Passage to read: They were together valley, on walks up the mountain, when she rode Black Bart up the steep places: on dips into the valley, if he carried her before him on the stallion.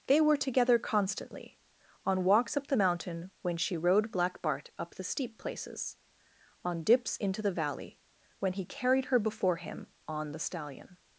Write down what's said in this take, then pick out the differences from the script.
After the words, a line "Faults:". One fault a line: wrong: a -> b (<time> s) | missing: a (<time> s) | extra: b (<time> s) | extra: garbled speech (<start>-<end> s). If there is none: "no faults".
They were together constantly, on walks up the mountain, when she rode Black Bart up the steep places: on dips into the valley, when he carried her before him on the stallion.
Faults:
wrong: valley -> constantly (0.8 s)
wrong: if -> when (8.4 s)